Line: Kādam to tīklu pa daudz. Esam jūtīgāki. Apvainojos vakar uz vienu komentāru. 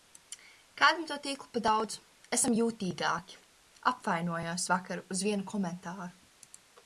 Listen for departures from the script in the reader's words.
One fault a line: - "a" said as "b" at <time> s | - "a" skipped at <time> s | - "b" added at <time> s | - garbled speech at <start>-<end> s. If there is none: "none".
none